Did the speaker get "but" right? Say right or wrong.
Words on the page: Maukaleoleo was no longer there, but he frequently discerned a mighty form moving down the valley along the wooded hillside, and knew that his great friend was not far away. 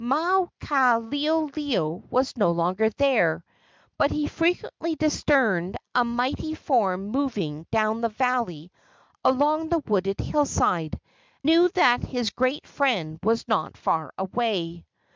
right